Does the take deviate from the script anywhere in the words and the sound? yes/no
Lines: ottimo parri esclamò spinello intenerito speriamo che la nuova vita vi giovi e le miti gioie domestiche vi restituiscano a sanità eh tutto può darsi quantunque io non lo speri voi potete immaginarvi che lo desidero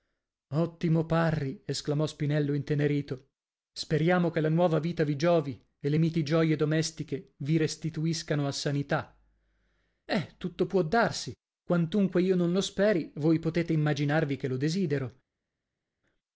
no